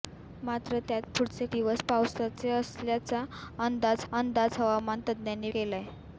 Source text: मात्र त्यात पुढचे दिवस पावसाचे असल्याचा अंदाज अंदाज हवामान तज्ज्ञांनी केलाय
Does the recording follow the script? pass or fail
pass